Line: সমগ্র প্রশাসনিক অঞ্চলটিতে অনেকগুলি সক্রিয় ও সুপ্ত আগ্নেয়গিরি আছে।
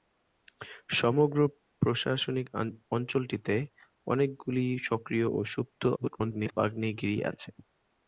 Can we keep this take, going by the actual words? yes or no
no